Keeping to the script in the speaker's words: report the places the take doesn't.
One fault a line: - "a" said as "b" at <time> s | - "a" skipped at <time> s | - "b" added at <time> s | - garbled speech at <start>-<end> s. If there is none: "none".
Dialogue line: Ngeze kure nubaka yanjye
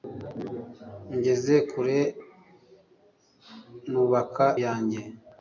none